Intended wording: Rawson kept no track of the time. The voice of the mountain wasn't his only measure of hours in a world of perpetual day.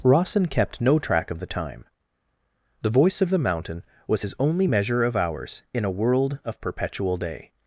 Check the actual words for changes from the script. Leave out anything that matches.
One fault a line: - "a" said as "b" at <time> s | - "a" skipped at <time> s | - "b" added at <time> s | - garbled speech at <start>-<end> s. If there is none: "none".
- "wasn't" said as "was" at 4.1 s